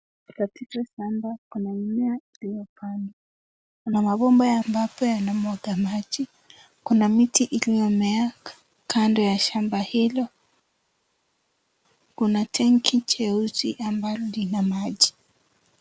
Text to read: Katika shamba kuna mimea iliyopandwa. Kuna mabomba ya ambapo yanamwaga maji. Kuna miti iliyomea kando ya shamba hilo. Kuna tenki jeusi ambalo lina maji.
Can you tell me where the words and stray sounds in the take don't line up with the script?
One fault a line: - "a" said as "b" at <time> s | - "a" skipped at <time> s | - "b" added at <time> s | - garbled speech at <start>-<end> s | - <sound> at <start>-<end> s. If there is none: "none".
none